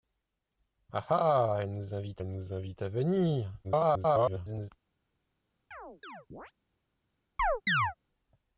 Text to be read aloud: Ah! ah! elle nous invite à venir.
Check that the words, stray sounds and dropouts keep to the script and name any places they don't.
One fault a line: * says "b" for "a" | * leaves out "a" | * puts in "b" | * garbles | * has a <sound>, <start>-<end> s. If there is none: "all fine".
* puts in "elle nous invite"
* garbles
* has a chirp, 5.7-6.5 s
* has a chirp, 7.4-7.9 s